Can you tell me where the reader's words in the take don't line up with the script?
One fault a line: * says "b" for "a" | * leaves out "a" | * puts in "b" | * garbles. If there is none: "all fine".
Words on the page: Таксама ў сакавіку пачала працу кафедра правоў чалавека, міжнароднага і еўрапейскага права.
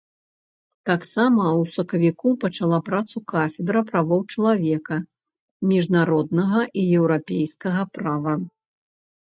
all fine